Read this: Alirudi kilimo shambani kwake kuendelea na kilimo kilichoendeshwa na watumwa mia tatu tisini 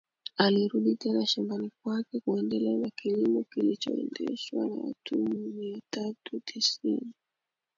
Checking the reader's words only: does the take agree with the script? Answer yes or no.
no